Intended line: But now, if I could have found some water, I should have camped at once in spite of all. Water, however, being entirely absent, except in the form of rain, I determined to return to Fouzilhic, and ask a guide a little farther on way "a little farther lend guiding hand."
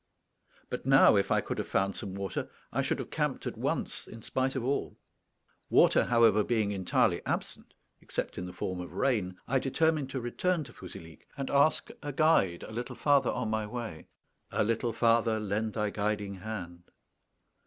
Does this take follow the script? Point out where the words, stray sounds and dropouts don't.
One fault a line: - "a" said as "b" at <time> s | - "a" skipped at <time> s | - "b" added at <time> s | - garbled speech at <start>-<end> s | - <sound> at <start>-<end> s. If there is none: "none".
- "my" added at 13.5 s
- "thy" added at 15.7 s